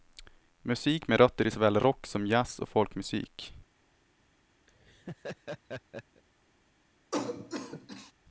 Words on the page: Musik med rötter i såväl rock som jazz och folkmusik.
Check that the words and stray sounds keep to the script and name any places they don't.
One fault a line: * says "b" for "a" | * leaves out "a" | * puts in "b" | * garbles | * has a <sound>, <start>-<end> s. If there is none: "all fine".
* has a laugh, 4.7-6.2 s
* has a cough, 7.1-8.1 s